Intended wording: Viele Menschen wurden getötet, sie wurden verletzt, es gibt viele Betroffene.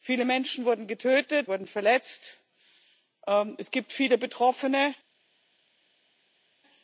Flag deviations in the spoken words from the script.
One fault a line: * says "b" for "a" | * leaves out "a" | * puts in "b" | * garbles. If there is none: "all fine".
* leaves out "sie"